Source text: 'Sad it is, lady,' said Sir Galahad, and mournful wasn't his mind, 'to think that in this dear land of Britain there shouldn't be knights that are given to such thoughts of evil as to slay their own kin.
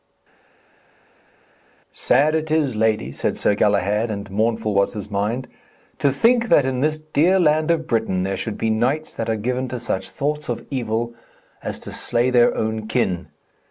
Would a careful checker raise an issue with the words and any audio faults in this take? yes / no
yes